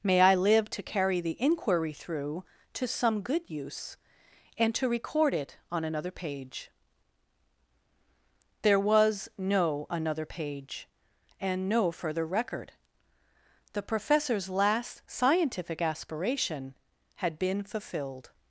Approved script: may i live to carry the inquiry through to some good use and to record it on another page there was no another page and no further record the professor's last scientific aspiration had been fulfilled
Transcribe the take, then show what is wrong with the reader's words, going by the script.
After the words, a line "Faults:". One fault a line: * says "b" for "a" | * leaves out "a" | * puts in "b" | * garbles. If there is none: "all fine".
may i live to carry the inquiry through to some good use and to record it on another page there was no another page and no further record the professor's last scientific aspiration had been fulfilled
Faults:
all fine